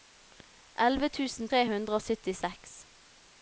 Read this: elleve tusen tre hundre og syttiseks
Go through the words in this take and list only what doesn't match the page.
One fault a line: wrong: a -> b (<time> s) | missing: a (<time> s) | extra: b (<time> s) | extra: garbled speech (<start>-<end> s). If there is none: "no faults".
no faults